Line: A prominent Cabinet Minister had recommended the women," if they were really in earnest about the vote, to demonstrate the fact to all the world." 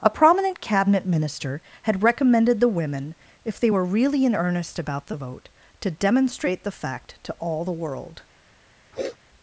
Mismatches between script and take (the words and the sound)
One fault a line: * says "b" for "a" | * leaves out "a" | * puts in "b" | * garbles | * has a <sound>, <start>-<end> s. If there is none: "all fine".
* has a sniff, 8.9-9.2 s